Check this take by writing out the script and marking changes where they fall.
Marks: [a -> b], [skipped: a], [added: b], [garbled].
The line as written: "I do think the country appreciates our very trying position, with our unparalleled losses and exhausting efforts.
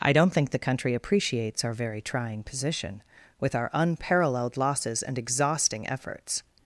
"I [do -> don't] think the country appreciates our very trying position, with our unparalleled losses and exhausting efforts.